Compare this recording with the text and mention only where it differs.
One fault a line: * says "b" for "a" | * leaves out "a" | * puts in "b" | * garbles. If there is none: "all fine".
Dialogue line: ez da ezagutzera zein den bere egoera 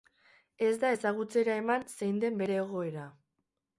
* puts in "eman"